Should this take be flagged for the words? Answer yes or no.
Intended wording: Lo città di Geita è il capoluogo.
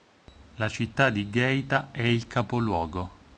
yes